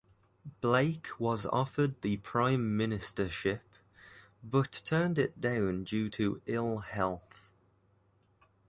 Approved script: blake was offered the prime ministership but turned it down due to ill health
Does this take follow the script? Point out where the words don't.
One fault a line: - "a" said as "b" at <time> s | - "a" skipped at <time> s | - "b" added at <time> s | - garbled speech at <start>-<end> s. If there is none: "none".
none